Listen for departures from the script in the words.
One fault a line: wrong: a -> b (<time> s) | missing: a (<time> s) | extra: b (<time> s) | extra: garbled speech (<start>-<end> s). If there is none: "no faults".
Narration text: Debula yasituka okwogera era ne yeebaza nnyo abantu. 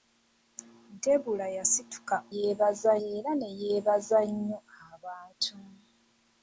wrong: okwogera -> yeebaza (2.3 s)